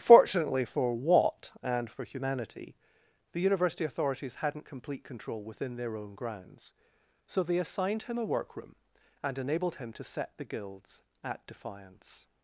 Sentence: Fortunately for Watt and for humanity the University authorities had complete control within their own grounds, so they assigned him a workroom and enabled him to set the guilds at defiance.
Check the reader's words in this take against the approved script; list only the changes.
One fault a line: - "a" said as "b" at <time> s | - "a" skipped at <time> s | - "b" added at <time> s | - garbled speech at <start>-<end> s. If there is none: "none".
- "had" said as "hadn't" at 4.4 s